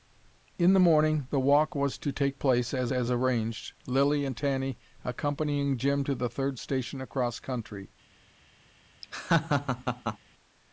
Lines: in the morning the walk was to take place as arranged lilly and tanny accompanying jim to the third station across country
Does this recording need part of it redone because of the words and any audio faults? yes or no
yes